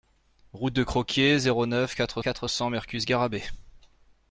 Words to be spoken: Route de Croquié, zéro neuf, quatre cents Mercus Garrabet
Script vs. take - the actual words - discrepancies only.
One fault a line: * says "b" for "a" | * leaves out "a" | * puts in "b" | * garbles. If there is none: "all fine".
* puts in "quatre"